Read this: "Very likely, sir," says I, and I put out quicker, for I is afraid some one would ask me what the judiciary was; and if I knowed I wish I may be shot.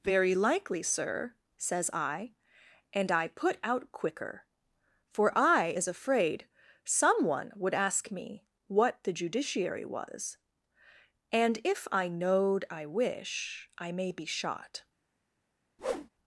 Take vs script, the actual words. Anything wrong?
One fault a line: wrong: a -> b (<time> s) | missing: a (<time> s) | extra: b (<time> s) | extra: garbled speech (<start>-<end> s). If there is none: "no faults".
no faults